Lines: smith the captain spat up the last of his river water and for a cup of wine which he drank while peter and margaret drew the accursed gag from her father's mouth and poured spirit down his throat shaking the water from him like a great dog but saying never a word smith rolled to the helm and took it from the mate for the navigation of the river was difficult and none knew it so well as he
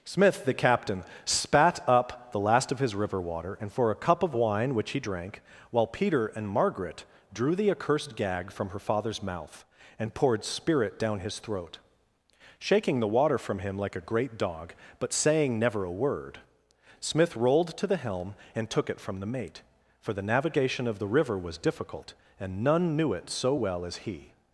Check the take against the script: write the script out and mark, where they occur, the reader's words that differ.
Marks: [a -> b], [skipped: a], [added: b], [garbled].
smith the captain spat up the last of his river water and for a cup of wine which he drank while peter and margaret drew the accursed gag from her father's mouth and poured spirit down his throat shaking the water from him like a great dog but saying never a word smith rolled to the helm and took it from the mate for the navigation of the river was difficult and none knew it so well as he